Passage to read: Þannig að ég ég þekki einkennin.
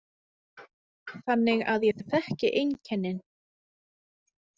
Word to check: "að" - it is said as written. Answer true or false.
true